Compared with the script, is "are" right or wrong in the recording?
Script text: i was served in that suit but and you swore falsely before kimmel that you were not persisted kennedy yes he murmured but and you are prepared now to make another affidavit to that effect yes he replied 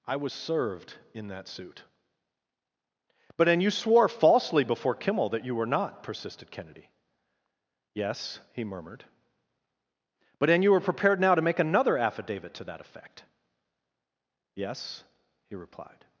wrong